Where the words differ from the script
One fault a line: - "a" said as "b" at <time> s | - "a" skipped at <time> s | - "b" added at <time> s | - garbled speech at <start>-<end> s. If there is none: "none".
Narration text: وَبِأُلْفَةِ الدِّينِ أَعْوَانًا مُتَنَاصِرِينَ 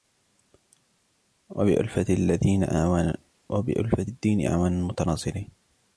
none